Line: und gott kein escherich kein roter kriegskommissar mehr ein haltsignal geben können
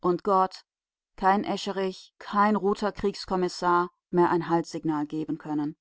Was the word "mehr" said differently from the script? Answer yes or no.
no